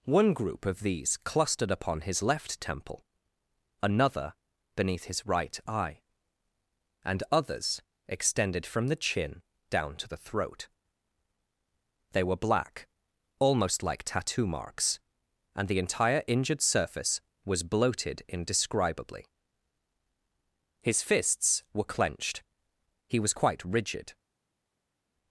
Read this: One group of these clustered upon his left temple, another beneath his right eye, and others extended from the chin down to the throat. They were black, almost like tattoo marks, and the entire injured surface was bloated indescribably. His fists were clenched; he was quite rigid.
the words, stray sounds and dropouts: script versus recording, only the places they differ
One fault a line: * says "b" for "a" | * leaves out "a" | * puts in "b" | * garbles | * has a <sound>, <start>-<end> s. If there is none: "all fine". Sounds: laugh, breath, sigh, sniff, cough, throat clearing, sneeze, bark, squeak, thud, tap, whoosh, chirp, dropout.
all fine